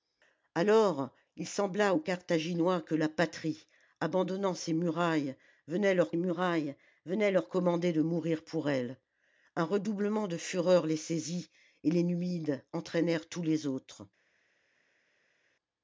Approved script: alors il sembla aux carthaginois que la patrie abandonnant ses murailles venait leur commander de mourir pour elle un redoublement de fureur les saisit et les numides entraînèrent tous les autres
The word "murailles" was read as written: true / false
true